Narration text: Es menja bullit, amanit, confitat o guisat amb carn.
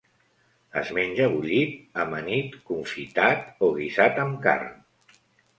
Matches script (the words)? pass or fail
pass